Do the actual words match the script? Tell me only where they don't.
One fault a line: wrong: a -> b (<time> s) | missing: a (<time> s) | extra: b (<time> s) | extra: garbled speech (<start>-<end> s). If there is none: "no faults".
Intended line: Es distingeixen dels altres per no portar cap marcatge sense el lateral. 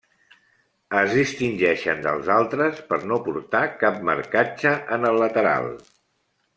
wrong: sense -> en (5.0 s)